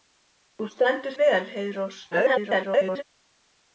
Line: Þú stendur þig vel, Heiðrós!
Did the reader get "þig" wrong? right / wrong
wrong